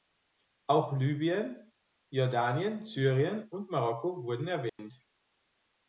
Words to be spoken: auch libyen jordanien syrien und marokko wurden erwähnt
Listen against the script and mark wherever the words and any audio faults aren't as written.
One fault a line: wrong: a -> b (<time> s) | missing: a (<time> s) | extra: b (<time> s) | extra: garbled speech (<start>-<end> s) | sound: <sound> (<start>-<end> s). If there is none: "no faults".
sound: dropout (4.7-4.8 s)